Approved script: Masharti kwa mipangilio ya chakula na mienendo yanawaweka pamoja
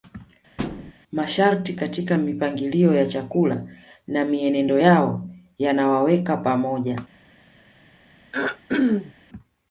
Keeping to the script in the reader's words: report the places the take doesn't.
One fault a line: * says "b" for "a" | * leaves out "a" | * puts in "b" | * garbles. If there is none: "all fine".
* says "katika" for "kwa"
* puts in "yao"